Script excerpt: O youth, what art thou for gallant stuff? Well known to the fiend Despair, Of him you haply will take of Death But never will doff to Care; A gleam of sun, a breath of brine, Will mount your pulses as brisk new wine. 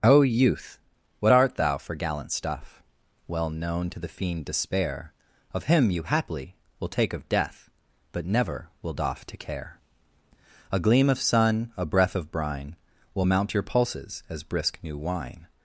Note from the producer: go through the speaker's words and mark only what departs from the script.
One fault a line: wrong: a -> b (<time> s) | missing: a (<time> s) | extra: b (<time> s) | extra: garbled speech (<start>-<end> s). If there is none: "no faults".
no faults